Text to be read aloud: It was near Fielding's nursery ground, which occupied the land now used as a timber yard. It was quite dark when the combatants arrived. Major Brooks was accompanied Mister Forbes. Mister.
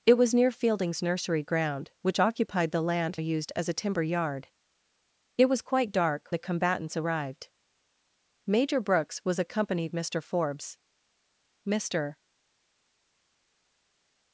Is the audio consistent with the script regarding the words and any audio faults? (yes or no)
no